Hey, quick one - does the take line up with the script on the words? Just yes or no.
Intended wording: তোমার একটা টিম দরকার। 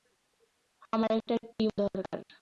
no